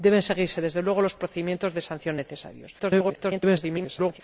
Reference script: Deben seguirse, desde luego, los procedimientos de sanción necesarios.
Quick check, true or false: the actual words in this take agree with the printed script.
false